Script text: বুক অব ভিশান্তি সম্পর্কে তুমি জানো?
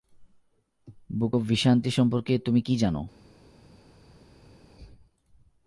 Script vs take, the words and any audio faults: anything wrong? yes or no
yes